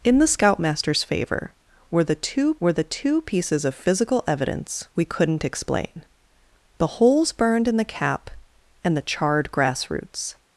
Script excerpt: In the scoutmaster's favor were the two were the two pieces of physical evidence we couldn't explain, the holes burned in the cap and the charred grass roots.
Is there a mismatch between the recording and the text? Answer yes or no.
no